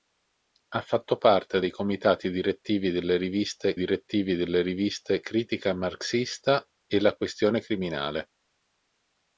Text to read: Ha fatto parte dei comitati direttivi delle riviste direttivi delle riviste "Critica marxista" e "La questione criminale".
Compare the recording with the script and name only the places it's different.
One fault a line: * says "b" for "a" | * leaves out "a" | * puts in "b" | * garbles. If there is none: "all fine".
all fine